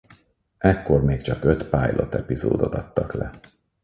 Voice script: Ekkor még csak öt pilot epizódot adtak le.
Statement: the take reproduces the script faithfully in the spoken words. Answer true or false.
true